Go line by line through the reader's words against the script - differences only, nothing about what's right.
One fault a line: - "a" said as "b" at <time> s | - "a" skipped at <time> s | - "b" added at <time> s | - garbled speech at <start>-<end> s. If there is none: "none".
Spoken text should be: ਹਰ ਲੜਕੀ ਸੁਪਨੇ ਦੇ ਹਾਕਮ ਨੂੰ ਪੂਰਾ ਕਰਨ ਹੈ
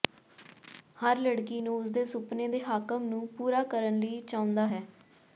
- "ਨੂੰ ਉਸ ਦੇ" added at 1.6 s
- "ਲਈ ਚਾਹੁੰਦਾ" added at 4.0 s